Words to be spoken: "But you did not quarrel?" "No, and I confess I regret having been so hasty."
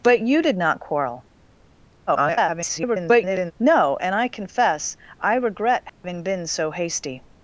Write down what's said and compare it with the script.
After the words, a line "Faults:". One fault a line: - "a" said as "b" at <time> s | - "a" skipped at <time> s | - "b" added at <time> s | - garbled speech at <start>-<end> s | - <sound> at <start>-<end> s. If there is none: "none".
"But you did not quarrel?" [garbled] "No, and I confess I regret having been so hasty."
Faults:
- garbled speech at 2.1-3.5 s
- dropout at 5.9-6.0 s